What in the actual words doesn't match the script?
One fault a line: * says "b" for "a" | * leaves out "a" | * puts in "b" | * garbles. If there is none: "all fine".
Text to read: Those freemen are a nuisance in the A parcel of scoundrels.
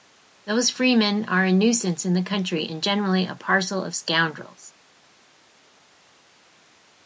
* puts in "Country and generally"